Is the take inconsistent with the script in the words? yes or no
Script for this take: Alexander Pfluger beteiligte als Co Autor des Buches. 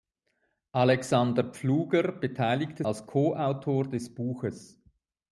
no